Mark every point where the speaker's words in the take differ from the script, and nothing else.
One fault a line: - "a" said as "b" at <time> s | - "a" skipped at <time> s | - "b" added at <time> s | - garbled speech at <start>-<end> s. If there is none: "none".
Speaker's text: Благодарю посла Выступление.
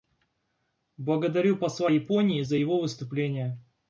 - "Японии за его" added at 1.9 s